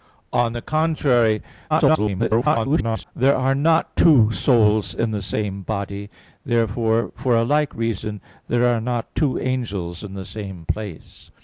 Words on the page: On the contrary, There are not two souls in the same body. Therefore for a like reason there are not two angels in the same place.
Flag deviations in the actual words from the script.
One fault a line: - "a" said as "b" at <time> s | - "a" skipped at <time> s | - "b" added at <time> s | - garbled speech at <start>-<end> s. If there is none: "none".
- garbled speech at 1.7-3.1 s